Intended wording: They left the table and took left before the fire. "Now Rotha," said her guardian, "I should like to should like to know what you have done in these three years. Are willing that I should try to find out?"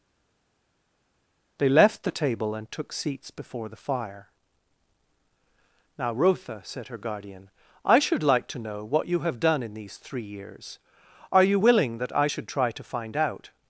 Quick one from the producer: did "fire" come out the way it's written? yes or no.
yes